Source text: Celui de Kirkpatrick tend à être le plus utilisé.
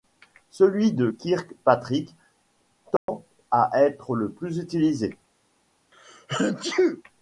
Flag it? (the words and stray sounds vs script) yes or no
yes